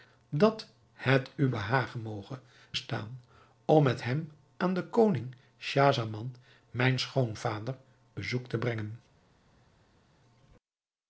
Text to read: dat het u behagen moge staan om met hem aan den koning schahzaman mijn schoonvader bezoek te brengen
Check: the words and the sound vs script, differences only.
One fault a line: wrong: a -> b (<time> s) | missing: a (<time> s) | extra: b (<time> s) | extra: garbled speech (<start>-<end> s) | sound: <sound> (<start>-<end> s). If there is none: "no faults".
no faults